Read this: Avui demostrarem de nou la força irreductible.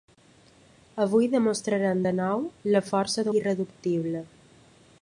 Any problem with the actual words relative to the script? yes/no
no